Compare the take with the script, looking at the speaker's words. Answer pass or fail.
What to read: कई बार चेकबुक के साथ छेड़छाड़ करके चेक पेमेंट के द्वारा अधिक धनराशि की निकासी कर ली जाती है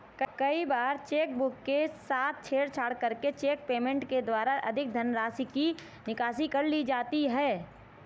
pass